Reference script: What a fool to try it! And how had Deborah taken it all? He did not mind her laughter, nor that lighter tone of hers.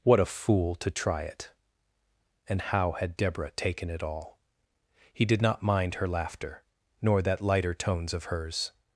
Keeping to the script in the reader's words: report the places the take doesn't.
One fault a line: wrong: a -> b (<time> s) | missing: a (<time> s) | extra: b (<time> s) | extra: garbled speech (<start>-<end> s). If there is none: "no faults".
wrong: tone -> tones (7.7 s)